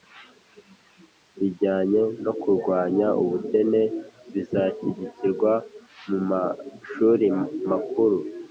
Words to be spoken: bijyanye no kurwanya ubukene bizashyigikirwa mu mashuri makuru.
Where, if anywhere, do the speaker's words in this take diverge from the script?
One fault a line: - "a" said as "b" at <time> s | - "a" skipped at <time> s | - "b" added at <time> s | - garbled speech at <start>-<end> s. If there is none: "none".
none